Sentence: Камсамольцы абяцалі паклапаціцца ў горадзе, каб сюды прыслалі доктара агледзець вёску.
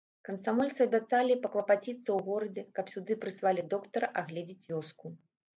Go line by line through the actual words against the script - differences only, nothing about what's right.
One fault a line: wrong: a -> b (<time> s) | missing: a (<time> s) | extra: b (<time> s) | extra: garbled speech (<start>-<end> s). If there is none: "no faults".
no faults